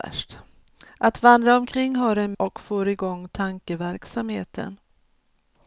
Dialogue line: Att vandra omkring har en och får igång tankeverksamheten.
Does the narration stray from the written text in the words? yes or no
no